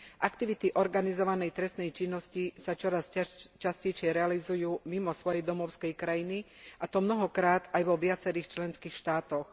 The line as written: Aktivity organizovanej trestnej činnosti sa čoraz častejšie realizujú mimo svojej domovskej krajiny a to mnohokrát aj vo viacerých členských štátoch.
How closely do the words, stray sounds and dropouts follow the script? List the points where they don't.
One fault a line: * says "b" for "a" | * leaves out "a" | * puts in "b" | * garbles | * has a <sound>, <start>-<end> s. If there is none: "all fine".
all fine